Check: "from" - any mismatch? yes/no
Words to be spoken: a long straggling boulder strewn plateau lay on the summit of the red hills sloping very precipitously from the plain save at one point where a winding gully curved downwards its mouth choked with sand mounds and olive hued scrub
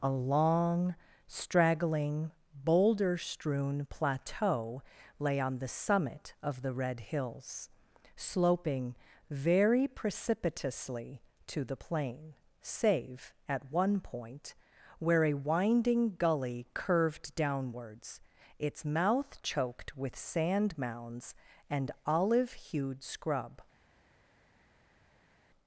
yes